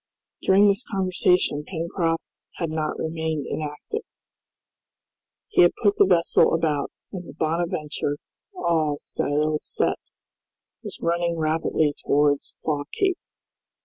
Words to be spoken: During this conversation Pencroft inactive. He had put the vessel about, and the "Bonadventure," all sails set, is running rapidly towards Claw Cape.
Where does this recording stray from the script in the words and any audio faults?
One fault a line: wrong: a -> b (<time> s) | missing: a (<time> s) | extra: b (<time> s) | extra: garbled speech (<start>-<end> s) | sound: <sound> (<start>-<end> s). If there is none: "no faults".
extra: had not remained (2.6 s)
wrong: is -> was (10.8 s)